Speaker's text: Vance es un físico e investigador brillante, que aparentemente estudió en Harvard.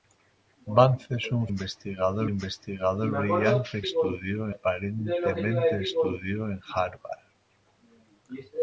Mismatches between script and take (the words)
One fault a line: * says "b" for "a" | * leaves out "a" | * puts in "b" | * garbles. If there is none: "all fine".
* says "investigador" for "físico"
* says "estudió" for "que"